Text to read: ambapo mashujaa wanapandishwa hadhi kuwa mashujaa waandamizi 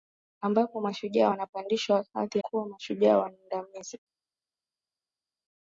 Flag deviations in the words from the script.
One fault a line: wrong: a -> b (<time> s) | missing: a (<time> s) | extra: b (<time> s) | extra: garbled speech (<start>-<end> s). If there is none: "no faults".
no faults